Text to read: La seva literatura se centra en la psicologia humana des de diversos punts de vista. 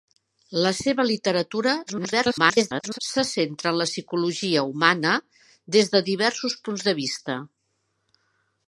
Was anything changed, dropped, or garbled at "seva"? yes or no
no